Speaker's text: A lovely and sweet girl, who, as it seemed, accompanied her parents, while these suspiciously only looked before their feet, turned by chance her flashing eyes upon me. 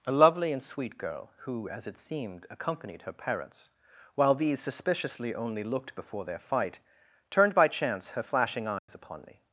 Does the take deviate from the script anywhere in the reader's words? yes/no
yes